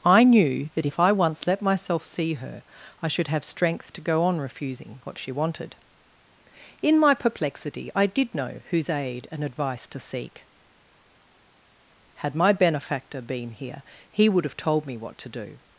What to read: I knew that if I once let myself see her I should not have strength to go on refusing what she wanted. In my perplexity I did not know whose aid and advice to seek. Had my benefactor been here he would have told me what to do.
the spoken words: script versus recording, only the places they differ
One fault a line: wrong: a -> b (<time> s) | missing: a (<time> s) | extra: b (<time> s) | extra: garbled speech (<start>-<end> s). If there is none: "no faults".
missing: not (3.3 s)
missing: not (8.4 s)